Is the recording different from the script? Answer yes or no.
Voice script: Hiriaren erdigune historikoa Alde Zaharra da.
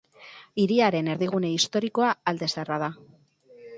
no